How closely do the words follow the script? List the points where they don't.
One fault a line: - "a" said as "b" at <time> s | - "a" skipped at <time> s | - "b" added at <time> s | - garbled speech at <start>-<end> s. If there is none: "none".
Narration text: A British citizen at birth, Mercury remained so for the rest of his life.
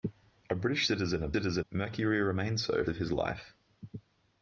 - "birth" said as "citizen" at 1.3 s
- "for the rest" skipped at 2.9 s